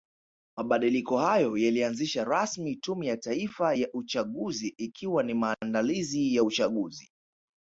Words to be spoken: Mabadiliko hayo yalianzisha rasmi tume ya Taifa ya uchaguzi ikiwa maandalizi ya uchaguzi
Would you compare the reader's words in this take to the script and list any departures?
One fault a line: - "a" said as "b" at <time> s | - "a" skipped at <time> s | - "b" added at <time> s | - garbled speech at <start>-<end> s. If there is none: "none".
- "ni" added at 5.2 s